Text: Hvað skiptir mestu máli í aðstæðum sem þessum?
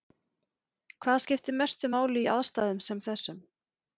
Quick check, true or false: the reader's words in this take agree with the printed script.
true